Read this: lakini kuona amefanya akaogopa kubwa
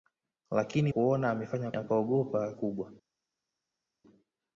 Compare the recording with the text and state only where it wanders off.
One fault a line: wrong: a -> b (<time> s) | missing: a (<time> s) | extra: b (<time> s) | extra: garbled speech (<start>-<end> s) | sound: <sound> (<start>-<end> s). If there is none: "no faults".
no faults